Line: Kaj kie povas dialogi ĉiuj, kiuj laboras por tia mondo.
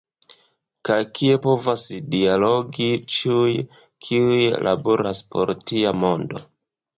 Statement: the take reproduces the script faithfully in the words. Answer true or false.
true